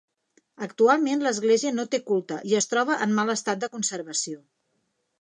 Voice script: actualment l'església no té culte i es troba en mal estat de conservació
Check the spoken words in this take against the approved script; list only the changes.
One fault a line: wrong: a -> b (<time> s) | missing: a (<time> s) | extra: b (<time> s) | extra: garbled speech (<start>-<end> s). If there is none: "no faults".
no faults